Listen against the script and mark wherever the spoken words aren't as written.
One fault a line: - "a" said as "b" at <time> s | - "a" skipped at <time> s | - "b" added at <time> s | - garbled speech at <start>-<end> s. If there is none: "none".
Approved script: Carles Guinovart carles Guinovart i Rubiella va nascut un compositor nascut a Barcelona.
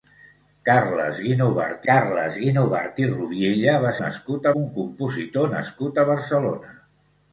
none